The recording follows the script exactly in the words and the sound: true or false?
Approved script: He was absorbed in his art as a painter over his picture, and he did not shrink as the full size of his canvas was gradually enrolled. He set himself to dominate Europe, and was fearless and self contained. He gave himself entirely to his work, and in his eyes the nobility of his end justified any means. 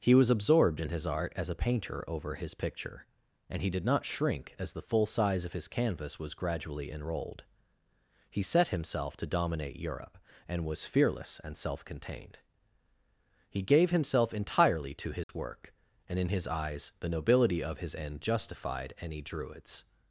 false